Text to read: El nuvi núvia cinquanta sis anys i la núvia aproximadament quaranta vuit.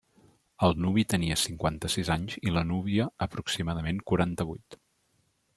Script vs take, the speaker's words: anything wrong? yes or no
yes